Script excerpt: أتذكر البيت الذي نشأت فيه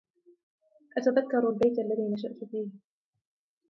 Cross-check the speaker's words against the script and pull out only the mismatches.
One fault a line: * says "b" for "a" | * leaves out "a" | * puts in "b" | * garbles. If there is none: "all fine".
all fine